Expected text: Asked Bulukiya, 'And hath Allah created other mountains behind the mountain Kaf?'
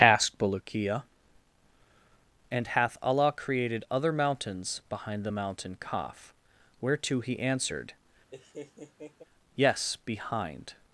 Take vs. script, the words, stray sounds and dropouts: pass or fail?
fail